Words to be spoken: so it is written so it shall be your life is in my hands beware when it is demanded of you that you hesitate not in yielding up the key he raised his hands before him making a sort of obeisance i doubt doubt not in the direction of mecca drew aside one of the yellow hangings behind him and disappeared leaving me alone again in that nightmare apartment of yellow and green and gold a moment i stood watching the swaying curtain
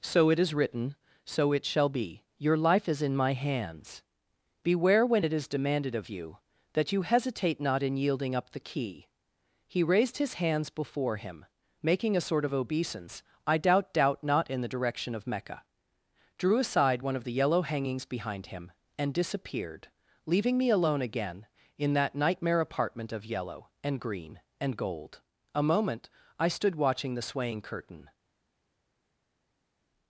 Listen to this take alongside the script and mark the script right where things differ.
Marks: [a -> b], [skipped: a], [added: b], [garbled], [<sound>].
so it is written so it shall be your life is in my hands beware when it is demanded of you that you hesitate not in yielding up the key he raised his hands before him making a sort of obeisance i doubt doubt not in the direction of mecca drew aside one of the yellow hangings behind him and disappeared leaving me alone again in that nightmare apartment of yellow and green and gold a moment i stood watching the swaying curtain